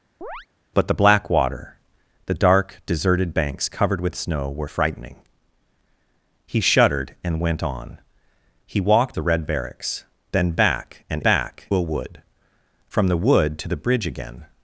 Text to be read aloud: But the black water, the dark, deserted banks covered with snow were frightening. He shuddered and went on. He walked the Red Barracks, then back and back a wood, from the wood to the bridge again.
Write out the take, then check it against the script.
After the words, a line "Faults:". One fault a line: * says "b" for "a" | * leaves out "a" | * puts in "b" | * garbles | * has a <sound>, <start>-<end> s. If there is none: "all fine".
But the black water, the dark, deserted banks covered with snow were frightening. He shuddered and went on. He walked the Red Barracks, then back and back a wood, from the wood to the bridge again.
Faults:
* has a chirp, 0.2-0.5 s